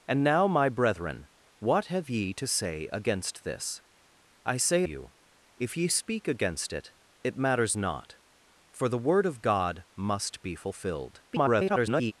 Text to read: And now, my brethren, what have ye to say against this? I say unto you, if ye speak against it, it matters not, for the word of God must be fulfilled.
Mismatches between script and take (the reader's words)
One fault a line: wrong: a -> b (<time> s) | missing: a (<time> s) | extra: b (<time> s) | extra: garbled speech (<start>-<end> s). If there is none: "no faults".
missing: unto (4.8 s)
extra: garbled speech (11.3-12.1 s)